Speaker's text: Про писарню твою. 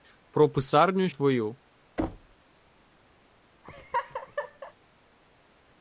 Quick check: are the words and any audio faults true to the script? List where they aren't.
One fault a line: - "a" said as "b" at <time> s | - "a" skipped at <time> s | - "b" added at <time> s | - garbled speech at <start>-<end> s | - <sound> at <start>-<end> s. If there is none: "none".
- thud at 2.0-2.4 s
- laugh at 3.6-4.7 s